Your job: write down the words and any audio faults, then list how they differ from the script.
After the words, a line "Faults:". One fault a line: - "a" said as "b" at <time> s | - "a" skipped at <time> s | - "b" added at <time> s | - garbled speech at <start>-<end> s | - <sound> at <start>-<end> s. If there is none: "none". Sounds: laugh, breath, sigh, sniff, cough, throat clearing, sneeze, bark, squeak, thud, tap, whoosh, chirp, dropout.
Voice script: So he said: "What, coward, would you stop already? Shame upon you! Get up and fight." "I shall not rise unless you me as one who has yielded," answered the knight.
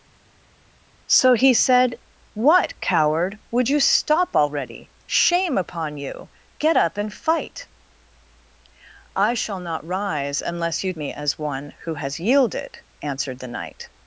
So he said: "What, coward, would you stop already? Shame upon you! Get up and fight." "I shall not rise unless you me as one who has yielded," answered the knight.
Faults:
none